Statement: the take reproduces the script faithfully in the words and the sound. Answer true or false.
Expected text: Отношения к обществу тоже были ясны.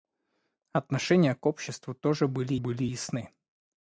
false